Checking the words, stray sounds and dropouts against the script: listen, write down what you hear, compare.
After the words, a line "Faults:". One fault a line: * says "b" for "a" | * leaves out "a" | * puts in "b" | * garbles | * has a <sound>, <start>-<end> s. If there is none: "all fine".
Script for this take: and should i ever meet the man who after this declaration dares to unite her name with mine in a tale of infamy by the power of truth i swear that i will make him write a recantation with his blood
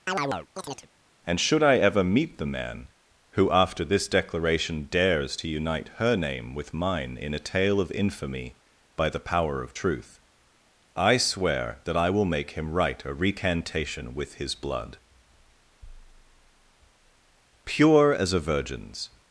and should i ever meet the man who after this declaration dares to unite her name with mine in a tale of infamy by the power of truth i swear that i will make him write a recantation with his blood pure as a virgin's
Faults:
* has a chirp, 0.1-0.9 s
* puts in "pure as a virgin's"